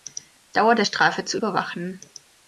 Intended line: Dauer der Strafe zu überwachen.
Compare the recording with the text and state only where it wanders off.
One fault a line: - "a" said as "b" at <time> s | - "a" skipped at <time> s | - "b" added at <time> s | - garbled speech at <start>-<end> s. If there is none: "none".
none